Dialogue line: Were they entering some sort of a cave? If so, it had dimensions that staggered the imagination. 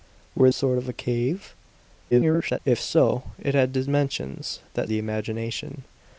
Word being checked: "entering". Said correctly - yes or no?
no